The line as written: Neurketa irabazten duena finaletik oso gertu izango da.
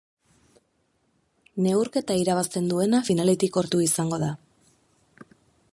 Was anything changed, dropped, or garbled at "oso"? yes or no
yes